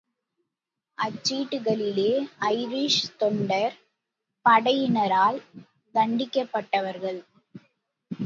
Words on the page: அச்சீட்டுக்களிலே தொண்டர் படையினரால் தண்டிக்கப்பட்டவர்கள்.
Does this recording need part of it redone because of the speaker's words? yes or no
yes